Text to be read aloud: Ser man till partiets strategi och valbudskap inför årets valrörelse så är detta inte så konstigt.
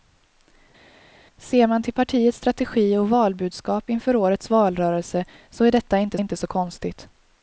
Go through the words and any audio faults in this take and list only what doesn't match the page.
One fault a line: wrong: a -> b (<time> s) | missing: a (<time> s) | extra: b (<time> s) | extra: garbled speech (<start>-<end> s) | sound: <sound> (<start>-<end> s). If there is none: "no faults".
extra: inte (6.2 s)